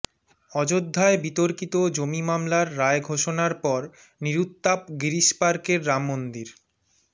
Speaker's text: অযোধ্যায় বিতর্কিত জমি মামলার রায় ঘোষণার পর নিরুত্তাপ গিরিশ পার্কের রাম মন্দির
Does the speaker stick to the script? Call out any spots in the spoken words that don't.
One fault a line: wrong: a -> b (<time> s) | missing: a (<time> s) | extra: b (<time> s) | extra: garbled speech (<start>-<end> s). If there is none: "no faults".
no faults